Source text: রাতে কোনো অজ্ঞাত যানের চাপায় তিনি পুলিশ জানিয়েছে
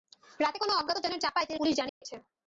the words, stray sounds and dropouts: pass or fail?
fail